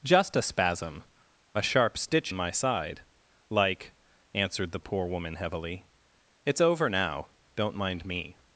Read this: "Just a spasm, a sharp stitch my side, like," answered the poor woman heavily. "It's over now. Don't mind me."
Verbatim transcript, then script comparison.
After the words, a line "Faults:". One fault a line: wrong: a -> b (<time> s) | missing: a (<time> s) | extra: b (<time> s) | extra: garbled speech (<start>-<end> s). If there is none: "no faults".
"Just a spasm, a sharp stitch my side, like," answered the poor woman heavily. "It's over now. Don't mind me."
Faults:
no faults